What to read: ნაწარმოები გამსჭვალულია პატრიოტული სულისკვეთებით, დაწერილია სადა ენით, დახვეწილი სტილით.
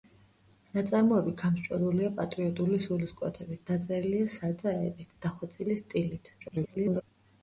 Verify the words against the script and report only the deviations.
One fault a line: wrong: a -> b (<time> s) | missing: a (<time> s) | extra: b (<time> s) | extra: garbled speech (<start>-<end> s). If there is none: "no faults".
extra: garbled speech (6.4-7.0 s)